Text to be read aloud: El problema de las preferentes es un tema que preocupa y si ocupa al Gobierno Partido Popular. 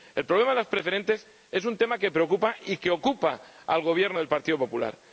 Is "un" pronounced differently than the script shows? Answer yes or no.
no